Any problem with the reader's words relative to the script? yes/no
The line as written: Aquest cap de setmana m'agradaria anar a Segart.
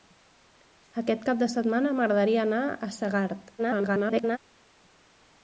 yes